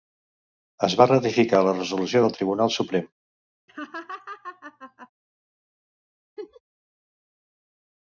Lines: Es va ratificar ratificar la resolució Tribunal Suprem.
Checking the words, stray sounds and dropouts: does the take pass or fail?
fail